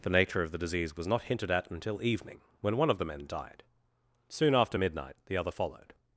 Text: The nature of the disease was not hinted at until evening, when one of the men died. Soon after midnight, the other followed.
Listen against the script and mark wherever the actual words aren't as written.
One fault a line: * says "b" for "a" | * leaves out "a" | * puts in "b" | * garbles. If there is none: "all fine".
all fine